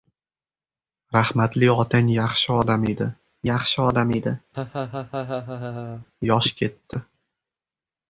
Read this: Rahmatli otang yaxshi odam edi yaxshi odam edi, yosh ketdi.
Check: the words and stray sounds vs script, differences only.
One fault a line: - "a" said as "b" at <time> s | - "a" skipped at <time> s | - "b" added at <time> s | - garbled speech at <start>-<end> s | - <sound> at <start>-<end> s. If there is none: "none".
- laugh at 4.5-6.1 s